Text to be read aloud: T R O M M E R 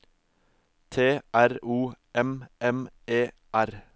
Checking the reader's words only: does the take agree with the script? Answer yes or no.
yes